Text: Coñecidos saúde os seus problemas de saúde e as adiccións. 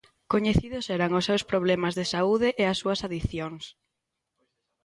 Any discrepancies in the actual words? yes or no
yes